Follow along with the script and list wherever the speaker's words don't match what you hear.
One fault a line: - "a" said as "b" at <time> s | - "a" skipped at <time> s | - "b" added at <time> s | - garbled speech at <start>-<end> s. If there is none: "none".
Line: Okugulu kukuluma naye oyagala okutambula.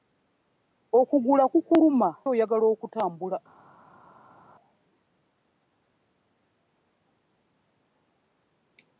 - "naye" skipped at 2.1 s